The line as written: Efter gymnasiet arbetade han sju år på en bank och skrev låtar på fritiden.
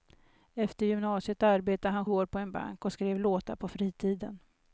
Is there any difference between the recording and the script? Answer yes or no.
yes